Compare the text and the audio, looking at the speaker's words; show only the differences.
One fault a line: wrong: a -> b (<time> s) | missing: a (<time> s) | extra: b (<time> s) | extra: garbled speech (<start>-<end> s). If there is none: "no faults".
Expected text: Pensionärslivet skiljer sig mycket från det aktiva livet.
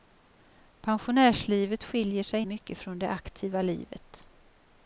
no faults